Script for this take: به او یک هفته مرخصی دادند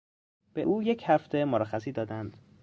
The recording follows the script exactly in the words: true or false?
true